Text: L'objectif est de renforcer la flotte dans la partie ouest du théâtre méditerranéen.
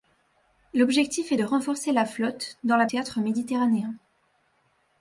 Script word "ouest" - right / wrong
wrong